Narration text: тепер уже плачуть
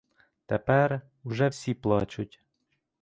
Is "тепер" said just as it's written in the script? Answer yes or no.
yes